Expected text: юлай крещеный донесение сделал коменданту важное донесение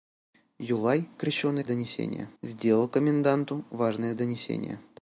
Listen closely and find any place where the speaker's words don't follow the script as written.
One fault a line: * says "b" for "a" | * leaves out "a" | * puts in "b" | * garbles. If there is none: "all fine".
all fine